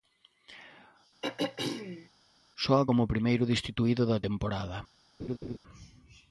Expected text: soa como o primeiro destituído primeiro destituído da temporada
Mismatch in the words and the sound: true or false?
true